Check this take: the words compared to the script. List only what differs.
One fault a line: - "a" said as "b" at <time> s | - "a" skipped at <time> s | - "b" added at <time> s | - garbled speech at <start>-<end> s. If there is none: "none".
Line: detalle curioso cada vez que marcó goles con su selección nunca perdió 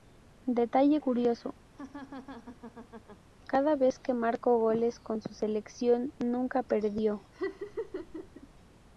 none